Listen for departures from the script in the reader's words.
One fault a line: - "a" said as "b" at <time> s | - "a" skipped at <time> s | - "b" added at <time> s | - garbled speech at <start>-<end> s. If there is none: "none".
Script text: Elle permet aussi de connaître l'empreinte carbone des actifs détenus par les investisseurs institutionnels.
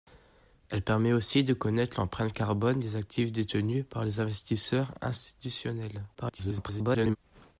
- garbled speech at 6.1-7.2 s